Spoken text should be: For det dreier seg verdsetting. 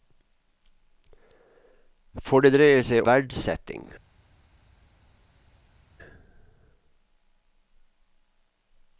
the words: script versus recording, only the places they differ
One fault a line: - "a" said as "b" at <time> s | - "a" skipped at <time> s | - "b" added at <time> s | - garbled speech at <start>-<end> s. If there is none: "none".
none